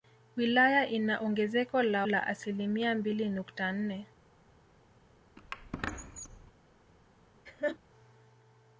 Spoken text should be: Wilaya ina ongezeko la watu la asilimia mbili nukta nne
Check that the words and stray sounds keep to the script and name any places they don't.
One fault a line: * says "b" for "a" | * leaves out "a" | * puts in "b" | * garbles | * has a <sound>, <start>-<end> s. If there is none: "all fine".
* leaves out "watu"
* has a squeak, 5.4-6.5 s
* has a laugh, 7.5-7.8 s